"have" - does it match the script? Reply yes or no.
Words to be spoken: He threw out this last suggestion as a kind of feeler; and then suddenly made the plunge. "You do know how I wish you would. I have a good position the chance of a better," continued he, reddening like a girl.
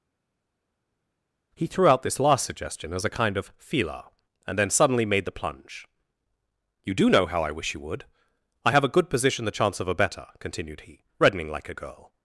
yes